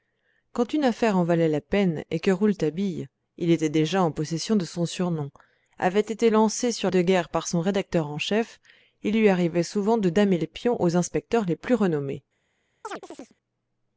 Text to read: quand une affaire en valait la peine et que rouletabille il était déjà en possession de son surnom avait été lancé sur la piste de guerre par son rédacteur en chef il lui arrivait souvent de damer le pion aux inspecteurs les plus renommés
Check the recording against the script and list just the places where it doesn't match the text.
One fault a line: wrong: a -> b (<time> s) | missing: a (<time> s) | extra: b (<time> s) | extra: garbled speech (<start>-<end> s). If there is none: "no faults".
missing: la piste (6.9 s)